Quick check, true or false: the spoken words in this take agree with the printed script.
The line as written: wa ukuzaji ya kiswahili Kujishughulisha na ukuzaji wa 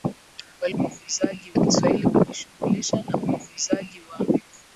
true